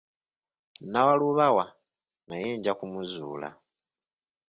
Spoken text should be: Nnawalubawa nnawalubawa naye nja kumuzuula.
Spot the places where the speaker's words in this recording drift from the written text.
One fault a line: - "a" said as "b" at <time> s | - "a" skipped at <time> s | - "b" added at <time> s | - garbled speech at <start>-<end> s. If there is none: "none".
- "nnawalubawa" skipped at 1.6 s